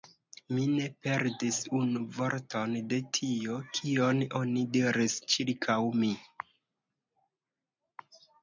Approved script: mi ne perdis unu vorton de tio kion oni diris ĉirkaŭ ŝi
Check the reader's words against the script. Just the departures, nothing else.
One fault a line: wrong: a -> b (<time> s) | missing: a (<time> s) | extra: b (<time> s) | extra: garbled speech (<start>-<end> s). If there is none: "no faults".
wrong: ŝi -> mi (6.0 s)